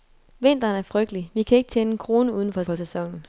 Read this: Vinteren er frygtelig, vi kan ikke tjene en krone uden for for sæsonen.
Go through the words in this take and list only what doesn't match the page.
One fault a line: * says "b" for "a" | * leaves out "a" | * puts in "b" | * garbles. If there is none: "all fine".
all fine